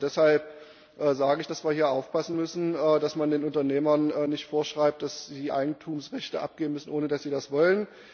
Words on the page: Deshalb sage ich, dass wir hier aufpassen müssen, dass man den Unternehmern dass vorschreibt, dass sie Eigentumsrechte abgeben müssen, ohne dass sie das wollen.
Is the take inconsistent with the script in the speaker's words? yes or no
yes